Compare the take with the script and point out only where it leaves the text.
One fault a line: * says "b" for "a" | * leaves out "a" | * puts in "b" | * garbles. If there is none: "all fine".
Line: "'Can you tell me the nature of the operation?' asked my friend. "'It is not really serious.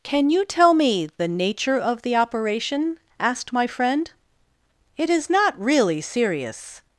all fine